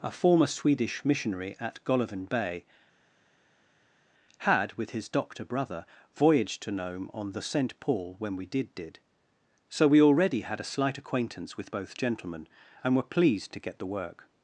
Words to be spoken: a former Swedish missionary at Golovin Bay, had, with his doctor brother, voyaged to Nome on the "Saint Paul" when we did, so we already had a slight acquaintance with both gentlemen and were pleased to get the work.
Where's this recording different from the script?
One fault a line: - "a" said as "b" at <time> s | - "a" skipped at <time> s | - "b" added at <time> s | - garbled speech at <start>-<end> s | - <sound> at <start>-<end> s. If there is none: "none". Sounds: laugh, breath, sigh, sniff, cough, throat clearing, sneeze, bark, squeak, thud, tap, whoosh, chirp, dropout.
- "did" added at 8.7 s